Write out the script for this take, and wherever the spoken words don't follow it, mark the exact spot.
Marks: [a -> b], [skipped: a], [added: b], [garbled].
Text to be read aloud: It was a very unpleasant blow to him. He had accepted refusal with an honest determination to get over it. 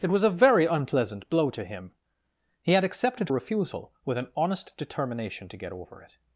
It was a very unpleasant blow to him. He had accepted refusal with an honest determination to get over it.